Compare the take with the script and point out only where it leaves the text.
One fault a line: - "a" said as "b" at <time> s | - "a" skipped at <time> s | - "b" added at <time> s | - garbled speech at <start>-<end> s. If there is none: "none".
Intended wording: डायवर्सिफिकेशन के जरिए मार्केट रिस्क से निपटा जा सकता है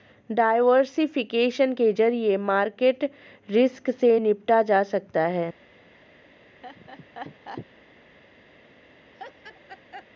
none